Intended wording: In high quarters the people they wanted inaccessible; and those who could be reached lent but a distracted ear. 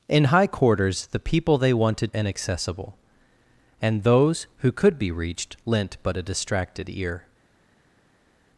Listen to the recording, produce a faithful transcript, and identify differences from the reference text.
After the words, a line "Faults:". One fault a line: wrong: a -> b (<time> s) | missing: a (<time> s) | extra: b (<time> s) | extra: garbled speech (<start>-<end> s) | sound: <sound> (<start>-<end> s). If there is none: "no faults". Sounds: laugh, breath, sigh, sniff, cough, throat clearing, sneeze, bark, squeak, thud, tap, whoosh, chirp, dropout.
In high quarters the people they wanted inaccessible; and those who could be reached lent but a distracted ear.
Faults:
no faults